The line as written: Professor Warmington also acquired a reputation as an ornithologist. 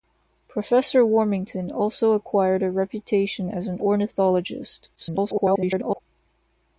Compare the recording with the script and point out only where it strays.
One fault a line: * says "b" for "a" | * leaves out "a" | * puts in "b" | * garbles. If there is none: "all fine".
* garbles